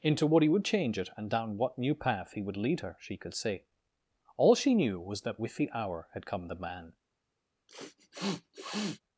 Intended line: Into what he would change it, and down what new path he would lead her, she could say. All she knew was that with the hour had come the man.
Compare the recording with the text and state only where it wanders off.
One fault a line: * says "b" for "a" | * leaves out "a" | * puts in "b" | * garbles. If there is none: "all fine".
all fine